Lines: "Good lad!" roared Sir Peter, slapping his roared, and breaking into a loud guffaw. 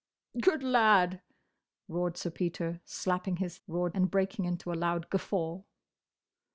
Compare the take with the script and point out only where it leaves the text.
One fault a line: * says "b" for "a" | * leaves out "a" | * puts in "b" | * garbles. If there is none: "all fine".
all fine